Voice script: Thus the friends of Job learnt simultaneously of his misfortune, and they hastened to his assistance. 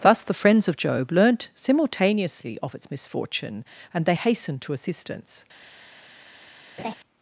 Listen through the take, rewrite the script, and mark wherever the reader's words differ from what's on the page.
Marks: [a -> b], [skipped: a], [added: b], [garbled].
Thus the friends of Job learnt simultaneously of [his -> its] misfortune, and they hastened to [skipped: his] assistance.